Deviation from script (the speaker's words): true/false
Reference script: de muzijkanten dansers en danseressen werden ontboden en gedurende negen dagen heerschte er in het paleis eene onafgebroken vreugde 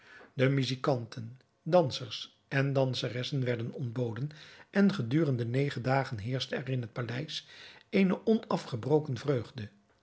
false